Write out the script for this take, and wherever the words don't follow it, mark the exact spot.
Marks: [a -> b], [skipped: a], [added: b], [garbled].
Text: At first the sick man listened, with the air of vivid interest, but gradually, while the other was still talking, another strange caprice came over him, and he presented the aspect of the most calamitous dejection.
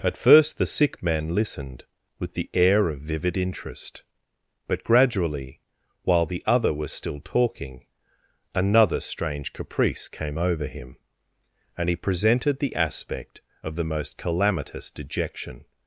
At first the sick man listened, with the air of vivid interest, but gradually, while the other was still talking, another strange caprice came over him, and he presented the aspect of the most calamitous dejection.